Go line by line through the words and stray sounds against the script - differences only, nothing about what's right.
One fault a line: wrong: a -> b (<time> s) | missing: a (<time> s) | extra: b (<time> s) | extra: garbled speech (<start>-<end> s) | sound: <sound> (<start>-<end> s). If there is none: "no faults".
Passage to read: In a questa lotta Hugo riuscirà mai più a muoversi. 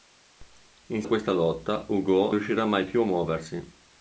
no faults